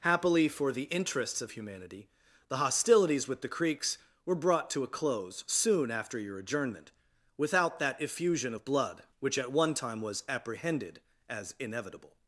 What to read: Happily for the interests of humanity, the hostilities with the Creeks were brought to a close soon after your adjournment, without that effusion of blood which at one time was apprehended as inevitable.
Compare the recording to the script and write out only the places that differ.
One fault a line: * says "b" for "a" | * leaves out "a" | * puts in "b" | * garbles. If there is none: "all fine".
all fine